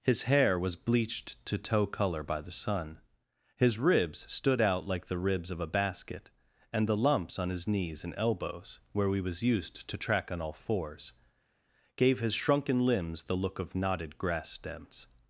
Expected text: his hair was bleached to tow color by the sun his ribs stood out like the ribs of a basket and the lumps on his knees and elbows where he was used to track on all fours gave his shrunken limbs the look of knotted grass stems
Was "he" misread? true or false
true